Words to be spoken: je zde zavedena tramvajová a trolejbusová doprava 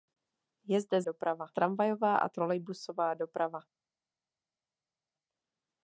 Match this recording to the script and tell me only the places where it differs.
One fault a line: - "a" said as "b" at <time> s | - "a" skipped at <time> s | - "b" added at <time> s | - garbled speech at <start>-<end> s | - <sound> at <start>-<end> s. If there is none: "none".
- "zavedena" said as "doprava" at 1.0 s